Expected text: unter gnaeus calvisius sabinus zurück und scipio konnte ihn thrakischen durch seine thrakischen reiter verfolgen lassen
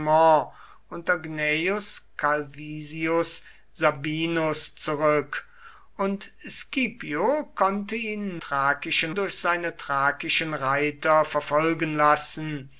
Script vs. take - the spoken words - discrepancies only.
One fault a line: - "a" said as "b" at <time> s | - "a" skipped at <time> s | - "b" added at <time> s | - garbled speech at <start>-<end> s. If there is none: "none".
none